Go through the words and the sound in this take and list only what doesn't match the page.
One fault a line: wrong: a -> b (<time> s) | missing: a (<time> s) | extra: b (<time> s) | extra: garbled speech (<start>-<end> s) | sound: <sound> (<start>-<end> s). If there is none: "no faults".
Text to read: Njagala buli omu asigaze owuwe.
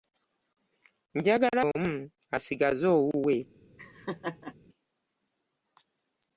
missing: buli (1.6 s)
sound: laugh (3.8-4.5 s)